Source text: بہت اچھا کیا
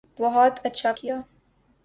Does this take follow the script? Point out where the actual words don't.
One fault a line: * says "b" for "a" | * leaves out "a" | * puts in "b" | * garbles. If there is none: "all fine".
all fine